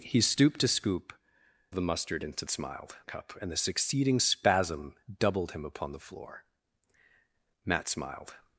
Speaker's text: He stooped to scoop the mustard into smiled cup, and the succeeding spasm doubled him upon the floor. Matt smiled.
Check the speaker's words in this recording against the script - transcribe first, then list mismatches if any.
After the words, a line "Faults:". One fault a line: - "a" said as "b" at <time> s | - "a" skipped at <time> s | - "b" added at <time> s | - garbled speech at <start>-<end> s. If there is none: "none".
He stooped to scoop the mustard into smiled cup, and the succeeding spasm doubled him upon the floor. Matt smiled.
Faults:
none